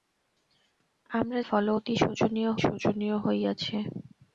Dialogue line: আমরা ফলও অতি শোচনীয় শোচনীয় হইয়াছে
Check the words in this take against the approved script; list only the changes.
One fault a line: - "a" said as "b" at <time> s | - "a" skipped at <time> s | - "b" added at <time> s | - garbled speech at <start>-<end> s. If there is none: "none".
none